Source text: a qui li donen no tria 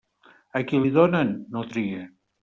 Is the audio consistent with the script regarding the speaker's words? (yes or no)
yes